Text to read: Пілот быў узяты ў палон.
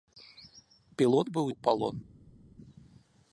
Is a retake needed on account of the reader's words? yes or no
yes